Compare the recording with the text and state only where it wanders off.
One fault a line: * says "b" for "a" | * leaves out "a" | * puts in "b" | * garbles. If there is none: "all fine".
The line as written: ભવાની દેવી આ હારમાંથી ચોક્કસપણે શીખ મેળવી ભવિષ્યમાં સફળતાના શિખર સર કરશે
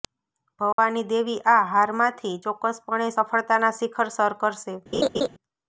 * leaves out "શીખ મેળવી ભવિષ્યમાં"